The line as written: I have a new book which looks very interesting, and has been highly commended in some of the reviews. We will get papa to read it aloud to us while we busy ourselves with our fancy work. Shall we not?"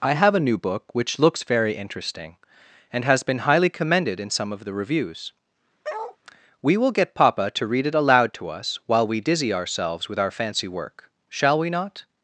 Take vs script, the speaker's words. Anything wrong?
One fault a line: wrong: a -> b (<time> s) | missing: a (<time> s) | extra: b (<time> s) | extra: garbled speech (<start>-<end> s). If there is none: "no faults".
wrong: busy -> dizzy (9.2 s)